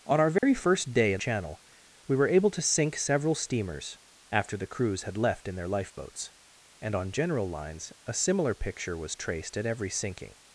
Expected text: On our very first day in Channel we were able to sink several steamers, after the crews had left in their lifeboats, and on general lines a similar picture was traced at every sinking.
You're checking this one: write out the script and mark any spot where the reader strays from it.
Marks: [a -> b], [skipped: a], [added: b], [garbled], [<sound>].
On our very [dropout] first day in Channel we were able to sink several steamers, after the crews had left in their lifeboats, and on general lines a similar picture was traced at every sinking.